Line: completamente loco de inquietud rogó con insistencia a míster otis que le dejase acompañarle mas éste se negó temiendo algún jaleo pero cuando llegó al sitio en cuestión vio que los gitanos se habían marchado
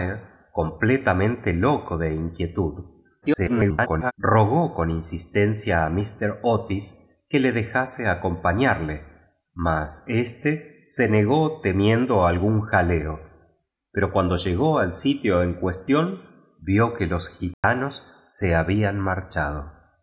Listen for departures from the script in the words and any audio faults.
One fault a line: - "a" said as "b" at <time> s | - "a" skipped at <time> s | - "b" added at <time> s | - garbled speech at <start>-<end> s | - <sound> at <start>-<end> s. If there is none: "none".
- garbled speech at 3.2-4.1 s
- dropout at 17.5-17.6 s